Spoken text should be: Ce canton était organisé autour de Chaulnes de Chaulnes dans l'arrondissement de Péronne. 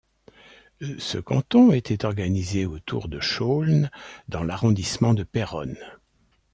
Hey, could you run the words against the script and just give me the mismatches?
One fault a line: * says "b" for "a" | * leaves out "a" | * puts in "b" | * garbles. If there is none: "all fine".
* leaves out "de Chaulnes"